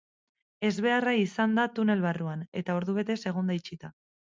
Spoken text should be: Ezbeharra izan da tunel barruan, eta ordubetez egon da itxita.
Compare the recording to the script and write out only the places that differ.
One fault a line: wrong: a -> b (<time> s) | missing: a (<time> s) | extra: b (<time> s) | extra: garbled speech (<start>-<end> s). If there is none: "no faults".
no faults